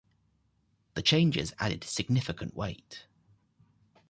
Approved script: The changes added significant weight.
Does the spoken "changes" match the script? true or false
true